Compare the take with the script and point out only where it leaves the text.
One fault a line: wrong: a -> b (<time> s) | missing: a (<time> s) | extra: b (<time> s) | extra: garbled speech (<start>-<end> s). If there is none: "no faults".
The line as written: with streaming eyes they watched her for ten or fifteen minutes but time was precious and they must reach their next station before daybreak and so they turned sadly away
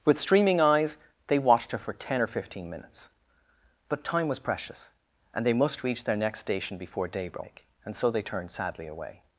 no faults